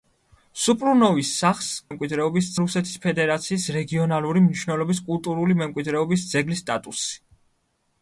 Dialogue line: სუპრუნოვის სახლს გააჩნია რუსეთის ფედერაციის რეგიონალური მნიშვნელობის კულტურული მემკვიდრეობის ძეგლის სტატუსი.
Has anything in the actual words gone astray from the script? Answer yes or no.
yes